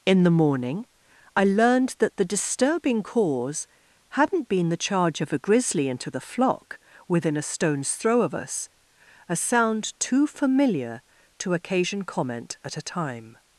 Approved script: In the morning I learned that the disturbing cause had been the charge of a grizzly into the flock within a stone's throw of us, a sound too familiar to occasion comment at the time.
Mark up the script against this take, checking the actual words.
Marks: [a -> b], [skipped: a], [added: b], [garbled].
In the morning I learned that the disturbing cause [had -> hadn't] been the charge of a grizzly into the flock within a stone's throw of us, a sound too familiar to occasion comment at [the -> a] time.